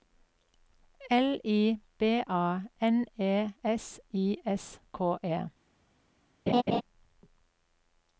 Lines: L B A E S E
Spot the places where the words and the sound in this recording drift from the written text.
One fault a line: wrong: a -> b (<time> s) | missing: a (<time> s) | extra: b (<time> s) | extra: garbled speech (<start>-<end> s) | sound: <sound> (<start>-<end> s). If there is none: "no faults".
extra: I (1.4 s)
extra: N (2.8 s)
extra: I S K (4.1 s)
sound: laugh (6.5-6.8 s)